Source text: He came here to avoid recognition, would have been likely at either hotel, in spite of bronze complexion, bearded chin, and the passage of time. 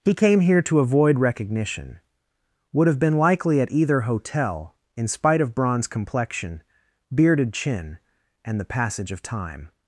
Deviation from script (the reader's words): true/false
false